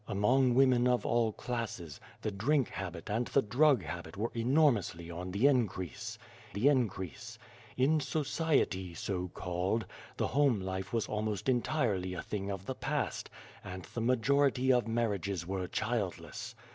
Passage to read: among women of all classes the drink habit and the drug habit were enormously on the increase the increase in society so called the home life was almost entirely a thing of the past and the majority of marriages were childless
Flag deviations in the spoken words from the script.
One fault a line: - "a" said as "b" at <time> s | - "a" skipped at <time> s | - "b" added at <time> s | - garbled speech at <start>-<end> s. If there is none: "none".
none